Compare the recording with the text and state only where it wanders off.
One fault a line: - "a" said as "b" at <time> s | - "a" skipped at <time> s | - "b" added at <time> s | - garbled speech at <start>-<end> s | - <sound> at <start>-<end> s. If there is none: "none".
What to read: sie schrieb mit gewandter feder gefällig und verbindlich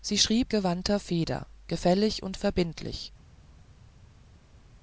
- "mit" skipped at 0.5 s